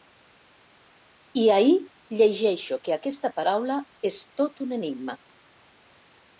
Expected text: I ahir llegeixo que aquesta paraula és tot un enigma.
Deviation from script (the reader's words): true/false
false